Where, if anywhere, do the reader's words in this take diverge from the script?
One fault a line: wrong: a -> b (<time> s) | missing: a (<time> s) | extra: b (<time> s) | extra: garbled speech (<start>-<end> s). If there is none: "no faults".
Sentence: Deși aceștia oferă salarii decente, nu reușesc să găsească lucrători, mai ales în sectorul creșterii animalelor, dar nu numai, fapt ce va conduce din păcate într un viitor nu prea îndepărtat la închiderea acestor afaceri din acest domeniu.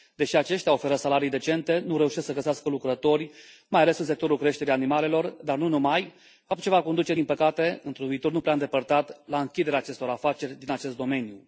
no faults